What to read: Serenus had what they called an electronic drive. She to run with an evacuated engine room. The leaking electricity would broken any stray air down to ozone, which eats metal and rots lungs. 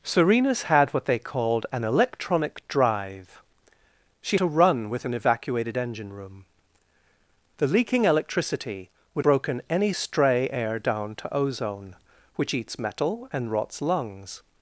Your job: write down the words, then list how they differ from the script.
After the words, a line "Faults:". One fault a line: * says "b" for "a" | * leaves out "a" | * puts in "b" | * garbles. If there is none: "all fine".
Serenus had what they called an electronic drive. She to run with an evacuated engine room. The leaking electricity would broken any stray air down to ozone, which eats metal and rots lungs.
Faults:
all fine